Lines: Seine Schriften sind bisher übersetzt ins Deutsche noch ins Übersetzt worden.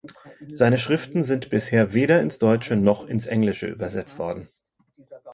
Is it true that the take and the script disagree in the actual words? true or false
true